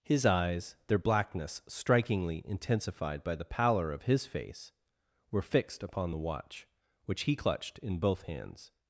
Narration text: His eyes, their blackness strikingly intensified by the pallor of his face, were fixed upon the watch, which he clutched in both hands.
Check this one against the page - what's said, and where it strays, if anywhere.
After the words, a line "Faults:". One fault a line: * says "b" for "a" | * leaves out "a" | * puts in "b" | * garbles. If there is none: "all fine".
His eyes, their blackness strikingly intensified by the pallor of his face, were fixed upon the watch, which he clutched in both hands.
Faults:
all fine